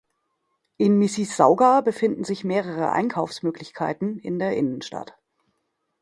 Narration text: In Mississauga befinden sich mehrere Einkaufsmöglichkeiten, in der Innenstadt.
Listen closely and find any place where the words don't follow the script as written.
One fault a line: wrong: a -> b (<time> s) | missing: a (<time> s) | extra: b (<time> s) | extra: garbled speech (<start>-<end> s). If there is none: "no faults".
no faults